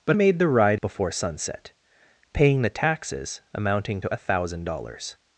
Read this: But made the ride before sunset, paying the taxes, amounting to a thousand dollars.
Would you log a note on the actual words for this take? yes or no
no